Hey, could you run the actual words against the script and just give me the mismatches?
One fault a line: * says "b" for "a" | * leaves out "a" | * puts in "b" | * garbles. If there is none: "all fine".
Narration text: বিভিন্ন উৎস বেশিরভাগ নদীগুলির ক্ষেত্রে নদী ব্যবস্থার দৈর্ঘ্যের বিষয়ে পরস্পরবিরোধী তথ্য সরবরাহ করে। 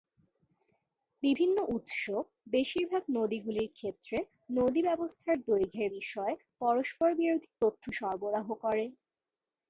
all fine